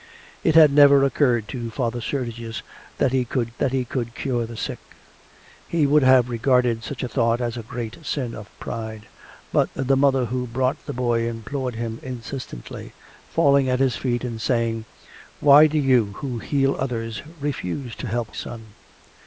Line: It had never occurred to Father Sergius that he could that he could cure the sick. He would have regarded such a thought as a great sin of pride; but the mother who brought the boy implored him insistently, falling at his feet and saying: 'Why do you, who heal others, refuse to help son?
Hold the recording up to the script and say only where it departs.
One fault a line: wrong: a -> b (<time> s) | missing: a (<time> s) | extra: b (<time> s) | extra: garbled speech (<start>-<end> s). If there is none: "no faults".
no faults